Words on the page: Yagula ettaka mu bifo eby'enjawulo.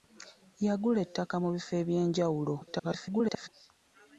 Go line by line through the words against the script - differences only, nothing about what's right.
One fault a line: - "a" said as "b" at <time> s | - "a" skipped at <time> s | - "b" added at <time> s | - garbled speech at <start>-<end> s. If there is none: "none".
- garbled speech at 2.6-3.5 s